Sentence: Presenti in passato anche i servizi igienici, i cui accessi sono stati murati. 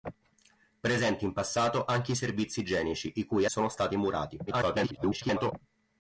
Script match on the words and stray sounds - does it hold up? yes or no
no